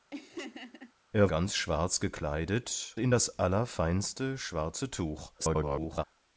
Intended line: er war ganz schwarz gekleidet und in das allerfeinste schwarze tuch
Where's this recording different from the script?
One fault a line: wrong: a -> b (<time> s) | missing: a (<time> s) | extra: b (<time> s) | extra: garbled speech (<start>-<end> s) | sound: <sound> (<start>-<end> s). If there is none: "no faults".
sound: laugh (0.1-0.9 s)
missing: war (1.3 s)
missing: und (3.0 s)
extra: garbled speech (5.4-6.0 s)